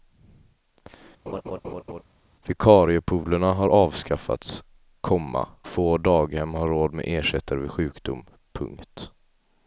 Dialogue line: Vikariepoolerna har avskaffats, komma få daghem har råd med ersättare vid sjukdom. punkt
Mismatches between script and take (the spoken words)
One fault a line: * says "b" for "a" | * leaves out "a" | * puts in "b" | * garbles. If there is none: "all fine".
all fine